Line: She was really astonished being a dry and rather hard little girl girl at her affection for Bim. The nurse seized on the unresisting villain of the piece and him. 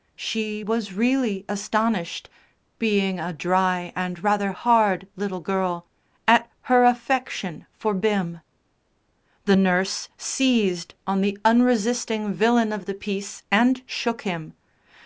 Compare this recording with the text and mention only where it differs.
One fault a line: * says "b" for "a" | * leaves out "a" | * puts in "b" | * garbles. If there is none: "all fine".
* leaves out "girl"
* puts in "shook"